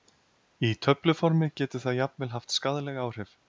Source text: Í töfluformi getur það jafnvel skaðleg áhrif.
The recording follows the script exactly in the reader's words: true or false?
false